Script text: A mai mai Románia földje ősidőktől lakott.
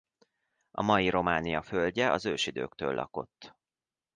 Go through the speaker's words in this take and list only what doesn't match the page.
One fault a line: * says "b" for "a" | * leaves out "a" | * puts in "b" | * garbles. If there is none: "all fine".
* leaves out "mai"
* puts in "az"